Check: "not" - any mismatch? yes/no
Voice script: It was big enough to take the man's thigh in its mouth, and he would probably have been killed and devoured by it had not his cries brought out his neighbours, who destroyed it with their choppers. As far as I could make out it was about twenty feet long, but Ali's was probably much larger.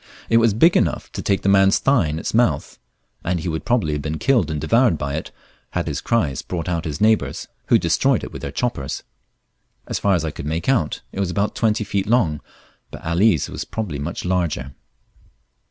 yes